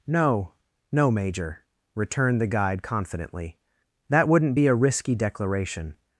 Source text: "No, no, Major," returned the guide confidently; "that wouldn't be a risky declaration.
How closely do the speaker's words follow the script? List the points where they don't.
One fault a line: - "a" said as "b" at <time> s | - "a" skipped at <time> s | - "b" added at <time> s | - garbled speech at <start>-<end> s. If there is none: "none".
none